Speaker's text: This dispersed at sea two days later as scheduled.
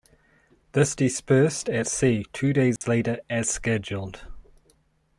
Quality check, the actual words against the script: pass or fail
pass